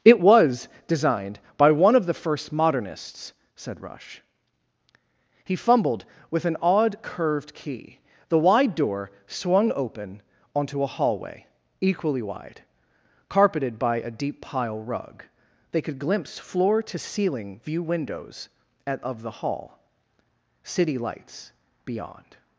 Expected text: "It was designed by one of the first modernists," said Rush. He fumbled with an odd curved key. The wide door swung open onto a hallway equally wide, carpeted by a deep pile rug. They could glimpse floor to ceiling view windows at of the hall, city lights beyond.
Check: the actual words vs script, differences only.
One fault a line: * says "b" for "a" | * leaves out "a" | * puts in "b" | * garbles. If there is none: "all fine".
all fine